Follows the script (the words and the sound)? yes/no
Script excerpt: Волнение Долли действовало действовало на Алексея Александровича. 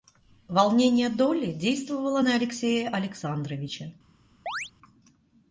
no